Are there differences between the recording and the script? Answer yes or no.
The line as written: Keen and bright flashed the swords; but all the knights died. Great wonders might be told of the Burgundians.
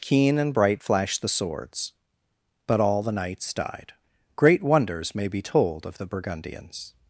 yes